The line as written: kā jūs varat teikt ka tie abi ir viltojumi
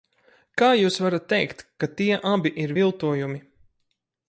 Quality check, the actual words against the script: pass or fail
pass